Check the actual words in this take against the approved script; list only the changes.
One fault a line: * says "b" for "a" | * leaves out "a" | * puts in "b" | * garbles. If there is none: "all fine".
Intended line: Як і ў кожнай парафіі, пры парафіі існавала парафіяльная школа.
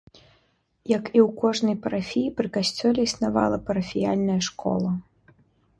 * says "касцёле" for "парафіі"